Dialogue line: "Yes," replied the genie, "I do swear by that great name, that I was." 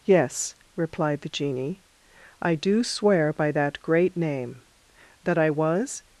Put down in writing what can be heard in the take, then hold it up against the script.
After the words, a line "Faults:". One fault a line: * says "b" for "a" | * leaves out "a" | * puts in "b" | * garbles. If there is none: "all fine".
"Yes," replied the genie, "I do swear by that great name, that I was."
Faults:
all fine